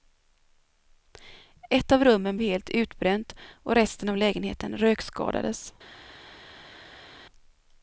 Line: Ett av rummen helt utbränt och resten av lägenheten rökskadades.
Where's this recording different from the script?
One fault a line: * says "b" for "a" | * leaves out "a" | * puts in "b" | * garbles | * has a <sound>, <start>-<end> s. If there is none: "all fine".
all fine